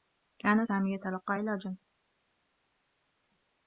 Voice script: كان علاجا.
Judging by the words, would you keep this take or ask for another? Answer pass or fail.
fail